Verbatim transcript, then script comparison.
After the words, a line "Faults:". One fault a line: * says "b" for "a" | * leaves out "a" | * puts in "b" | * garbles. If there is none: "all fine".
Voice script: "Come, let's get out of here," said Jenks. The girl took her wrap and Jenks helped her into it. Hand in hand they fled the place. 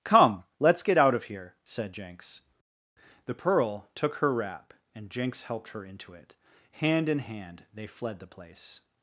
"Come, let's get out of here," said Jenks. The pearl took her wrap and Jenks helped her into it. Hand in hand they fled the place.
Faults:
* says "pearl" for "girl"